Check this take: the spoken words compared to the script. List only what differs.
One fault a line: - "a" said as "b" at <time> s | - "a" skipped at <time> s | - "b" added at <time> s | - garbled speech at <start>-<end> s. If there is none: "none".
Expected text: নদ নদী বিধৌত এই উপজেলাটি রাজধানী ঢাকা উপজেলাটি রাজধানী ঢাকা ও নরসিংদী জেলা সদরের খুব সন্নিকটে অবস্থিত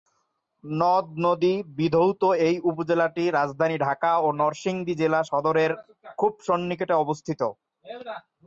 - "উপজেলাটি রাজধানী ঢাকা" skipped at 4.1 s